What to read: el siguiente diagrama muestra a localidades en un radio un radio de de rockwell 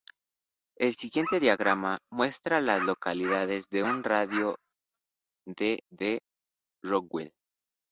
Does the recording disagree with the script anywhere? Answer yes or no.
yes